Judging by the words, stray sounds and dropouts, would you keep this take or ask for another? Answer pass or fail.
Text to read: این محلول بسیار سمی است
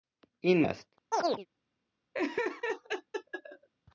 fail